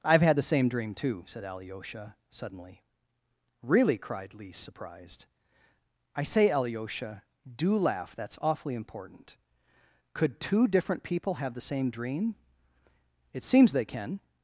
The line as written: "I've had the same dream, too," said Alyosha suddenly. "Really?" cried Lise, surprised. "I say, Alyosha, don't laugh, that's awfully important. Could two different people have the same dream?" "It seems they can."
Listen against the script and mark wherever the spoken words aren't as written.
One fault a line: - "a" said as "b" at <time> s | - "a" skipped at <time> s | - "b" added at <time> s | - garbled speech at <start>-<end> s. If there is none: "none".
- "don't" said as "do" at 7.5 s